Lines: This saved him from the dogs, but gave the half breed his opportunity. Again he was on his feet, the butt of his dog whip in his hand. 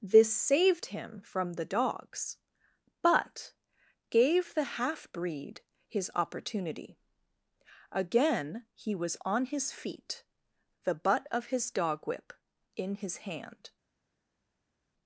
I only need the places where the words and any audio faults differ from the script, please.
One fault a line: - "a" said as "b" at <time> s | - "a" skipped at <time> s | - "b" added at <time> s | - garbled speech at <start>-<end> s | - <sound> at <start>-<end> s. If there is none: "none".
none